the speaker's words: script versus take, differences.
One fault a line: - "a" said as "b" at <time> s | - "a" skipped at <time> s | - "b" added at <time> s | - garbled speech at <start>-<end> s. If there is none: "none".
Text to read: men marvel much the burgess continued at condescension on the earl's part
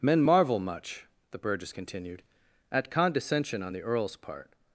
none